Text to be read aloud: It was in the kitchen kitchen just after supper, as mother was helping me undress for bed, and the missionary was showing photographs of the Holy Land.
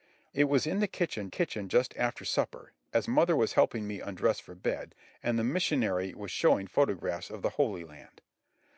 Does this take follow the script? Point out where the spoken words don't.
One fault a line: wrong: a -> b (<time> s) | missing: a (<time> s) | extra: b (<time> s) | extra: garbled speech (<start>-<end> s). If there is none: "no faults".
no faults